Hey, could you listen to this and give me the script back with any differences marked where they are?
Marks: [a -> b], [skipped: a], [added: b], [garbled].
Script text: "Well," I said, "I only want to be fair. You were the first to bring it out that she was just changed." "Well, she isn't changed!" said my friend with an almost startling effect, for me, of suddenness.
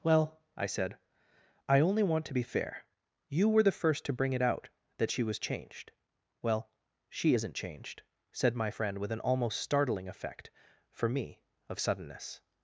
"Well," I said, "I only want to be fair. You were the first to bring it out that she was [skipped: just] changed." "Well, she isn't changed!" said my friend with an almost startling effect, for me, of suddenness.